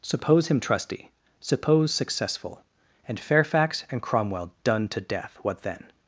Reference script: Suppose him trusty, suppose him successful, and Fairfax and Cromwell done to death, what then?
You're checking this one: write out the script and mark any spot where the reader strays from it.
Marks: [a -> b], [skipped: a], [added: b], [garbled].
Suppose him trusty, suppose [skipped: him] successful, and Fairfax and Cromwell done to death, what then?